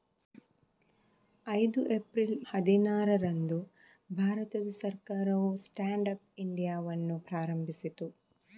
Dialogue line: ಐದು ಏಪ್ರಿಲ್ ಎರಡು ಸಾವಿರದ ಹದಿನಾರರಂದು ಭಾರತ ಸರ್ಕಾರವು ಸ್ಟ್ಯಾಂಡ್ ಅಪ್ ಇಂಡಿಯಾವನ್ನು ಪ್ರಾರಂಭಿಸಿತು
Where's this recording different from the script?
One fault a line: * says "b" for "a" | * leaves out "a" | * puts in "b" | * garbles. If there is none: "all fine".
* leaves out "ಎರಡು ಸಾವಿರದ"